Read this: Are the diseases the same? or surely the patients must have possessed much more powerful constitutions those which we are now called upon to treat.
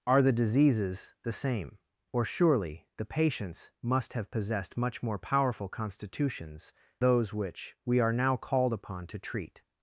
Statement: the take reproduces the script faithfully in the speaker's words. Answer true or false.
true